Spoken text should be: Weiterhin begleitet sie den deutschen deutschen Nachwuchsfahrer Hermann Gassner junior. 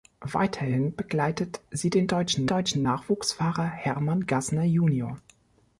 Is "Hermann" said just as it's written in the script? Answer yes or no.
yes